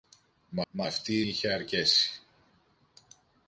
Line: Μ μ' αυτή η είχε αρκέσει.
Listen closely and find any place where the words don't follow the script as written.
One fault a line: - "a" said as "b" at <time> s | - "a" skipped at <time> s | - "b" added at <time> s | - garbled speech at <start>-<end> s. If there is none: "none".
none